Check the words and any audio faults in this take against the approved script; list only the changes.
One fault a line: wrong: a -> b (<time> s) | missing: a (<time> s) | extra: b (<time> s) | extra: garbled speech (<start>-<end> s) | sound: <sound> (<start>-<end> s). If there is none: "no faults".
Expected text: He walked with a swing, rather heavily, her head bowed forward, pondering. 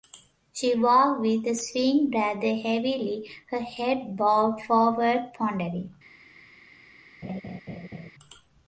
wrong: He -> She (0.5 s)
sound: laugh (7.2-8.1 s)